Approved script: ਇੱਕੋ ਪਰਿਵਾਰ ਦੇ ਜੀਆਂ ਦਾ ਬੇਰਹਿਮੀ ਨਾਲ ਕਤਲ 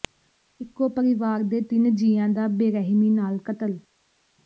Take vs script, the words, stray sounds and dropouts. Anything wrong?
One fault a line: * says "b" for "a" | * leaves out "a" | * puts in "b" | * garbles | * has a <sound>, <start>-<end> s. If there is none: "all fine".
* puts in "ਤਿੰਨ"